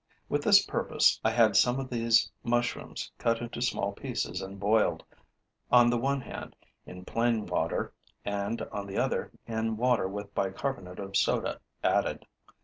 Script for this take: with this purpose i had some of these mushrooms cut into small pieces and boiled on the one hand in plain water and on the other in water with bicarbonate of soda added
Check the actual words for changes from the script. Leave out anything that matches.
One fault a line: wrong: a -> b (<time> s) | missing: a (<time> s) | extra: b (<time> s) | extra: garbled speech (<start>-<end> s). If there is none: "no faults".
no faults